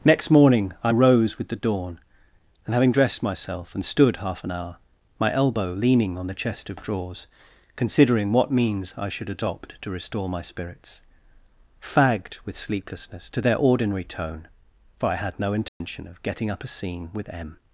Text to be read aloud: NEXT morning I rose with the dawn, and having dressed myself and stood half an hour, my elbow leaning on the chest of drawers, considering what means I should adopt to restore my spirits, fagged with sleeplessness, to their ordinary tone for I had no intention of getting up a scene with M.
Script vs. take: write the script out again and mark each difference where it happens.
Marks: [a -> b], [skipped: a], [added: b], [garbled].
NEXT morning I rose with the dawn, and having dressed myself and stood half an hour, my elbow leaning on the chest of drawers, considering what means I should adopt to restore my spirits, fagged with sleeplessness, to their ordinary tone for I had no intention of getting up a scene with M.